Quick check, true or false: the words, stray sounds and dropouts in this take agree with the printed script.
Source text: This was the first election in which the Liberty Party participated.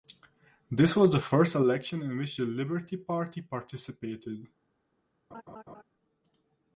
false